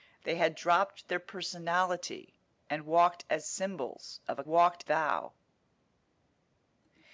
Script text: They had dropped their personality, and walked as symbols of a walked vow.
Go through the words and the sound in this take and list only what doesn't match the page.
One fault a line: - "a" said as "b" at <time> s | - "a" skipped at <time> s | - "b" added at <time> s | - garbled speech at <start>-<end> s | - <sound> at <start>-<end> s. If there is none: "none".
none